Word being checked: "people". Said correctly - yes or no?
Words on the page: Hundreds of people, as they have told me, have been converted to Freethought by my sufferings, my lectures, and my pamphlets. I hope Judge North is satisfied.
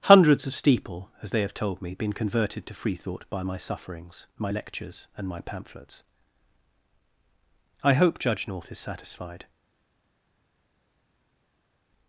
no